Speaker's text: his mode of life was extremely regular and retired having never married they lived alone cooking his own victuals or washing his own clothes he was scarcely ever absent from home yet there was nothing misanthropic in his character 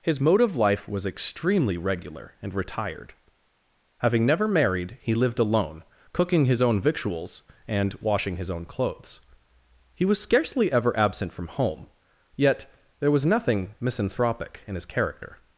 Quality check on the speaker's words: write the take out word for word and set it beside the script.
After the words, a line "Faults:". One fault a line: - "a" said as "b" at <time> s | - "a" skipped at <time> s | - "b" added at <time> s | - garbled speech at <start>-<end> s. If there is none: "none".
his mode of life was extremely regular and retired having never married he lived alone cooking his own victuals and washing his own clothes he was scarcely ever absent from home yet there was nothing misanthropic in his character
Faults:
- "they" said as "he" at 5.0 s
- "or" said as "and" at 7.7 s